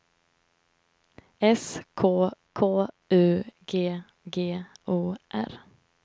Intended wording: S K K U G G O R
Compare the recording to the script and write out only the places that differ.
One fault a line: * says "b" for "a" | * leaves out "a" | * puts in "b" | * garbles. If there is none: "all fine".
all fine